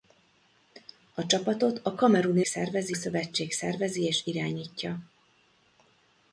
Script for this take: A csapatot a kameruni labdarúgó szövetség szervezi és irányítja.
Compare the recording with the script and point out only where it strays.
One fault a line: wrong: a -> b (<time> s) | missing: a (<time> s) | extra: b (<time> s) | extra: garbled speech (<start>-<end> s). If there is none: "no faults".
wrong: labdarúgó -> szervezi (2.5 s)